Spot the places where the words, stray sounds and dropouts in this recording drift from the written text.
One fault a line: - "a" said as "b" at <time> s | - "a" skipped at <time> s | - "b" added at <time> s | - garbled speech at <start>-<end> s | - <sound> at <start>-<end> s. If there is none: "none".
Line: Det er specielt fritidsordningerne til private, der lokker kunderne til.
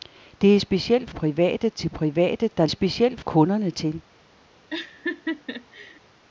- "fritidsordningerne" said as "private" at 1.1 s
- "lokker" said as "specielt" at 2.7 s
- laugh at 4.7-6.0 s